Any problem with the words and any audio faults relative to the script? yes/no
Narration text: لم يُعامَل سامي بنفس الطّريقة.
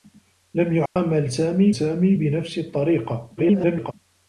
yes